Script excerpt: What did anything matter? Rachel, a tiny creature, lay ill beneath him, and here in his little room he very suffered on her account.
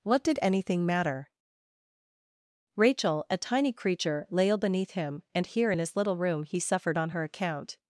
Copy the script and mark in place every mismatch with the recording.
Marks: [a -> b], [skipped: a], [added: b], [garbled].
What did anything matter? Rachel, a tiny creature, lay ill beneath him, and here in his little room he [skipped: very] suffered on her account.